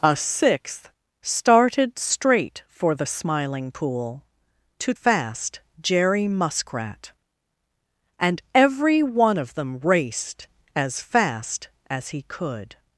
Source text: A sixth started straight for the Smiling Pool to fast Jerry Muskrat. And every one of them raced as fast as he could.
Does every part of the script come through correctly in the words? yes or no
yes